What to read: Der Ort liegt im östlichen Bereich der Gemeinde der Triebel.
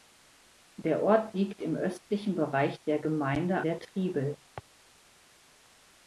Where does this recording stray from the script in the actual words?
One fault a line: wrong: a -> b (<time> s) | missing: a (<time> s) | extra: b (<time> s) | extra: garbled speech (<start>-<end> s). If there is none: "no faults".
no faults